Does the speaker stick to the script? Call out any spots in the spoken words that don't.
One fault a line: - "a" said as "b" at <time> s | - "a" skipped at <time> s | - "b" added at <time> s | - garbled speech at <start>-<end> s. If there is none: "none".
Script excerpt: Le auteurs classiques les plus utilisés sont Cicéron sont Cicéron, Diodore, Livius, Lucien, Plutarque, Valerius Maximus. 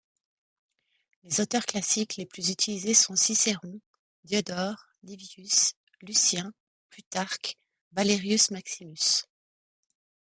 - "Le" said as "Les" at 1.2 s
- "sont Cicéron" skipped at 3.8 s